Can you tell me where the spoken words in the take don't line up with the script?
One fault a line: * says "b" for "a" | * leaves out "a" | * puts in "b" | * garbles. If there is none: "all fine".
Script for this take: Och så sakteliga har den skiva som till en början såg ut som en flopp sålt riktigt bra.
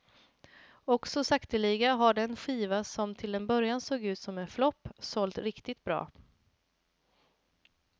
all fine